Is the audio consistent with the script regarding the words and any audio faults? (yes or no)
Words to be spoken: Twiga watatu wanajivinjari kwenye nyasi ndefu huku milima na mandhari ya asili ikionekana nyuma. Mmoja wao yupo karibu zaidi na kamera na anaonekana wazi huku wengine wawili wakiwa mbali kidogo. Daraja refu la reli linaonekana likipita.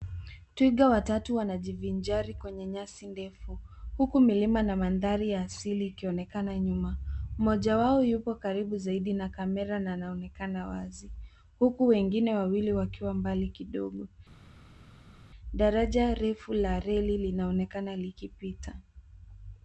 yes